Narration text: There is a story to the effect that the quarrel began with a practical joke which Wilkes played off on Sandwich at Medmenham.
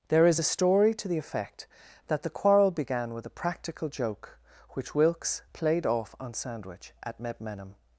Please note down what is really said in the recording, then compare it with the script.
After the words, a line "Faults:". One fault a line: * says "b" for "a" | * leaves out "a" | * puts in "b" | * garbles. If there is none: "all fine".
There is a story to the effect that the quarrel began with a practical joke which Wilkes played off on Sandwich at Medmenham.
Faults:
all fine